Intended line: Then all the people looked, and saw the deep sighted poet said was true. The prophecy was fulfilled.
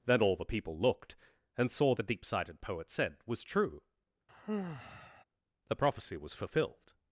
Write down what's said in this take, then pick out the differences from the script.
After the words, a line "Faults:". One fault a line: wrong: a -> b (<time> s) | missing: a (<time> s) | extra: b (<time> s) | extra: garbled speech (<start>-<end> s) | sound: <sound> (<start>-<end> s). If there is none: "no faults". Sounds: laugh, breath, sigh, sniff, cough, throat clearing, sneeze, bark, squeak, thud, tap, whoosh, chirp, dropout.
Then all the people looked, and saw the deep sighted poet said was true. The prophecy was fulfilled.
Faults:
sound: sigh (4.3-5.2 s)